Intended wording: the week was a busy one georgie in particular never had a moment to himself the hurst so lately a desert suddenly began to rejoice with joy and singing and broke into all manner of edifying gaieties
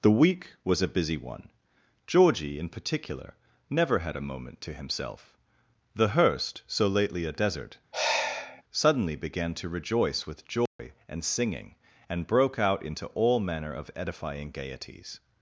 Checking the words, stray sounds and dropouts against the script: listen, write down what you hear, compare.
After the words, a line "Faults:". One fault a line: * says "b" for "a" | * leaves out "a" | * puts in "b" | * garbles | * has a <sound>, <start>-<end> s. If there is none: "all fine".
the week was a busy one georgie in particular never had a moment to himself the hurst so lately a desert suddenly began to rejoice with joy and singing and broke out into all manner of edifying gaieties
Faults:
* has a sigh, 7.9-8.6 s
* has a dropout, 10.7-10.8 s
* puts in "out"